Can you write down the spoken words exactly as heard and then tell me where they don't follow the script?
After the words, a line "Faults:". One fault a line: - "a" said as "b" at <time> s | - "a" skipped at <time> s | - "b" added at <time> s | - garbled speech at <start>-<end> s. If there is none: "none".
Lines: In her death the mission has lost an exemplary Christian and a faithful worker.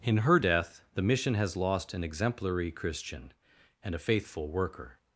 In her death the mission has lost an exemplary Christian and a faithful worker.
Faults:
none